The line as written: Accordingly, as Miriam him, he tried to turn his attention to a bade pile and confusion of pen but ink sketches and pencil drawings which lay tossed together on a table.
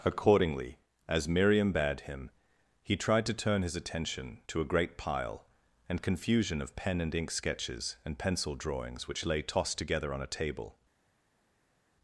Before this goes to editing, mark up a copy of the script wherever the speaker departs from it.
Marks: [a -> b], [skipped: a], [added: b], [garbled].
Accordingly, as Miriam [added: bade] him, he tried to turn his attention to a [bade -> great] pile and confusion of pen [but -> and] ink sketches and pencil drawings which lay tossed together on a table.